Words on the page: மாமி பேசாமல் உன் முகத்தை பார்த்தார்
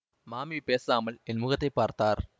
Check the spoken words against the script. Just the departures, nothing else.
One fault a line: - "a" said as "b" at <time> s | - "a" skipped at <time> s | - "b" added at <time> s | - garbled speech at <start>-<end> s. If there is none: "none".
- "உன்" said as "என்" at 1.2 s